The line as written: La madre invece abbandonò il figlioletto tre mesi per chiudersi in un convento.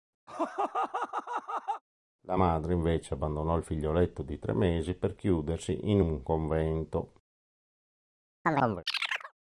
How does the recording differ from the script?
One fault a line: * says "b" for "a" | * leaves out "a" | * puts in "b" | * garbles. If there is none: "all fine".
* puts in "di"